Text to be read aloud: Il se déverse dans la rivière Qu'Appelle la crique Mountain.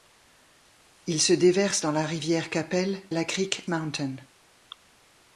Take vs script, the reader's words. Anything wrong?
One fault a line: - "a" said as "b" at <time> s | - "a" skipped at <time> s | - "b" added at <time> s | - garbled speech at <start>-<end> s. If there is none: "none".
none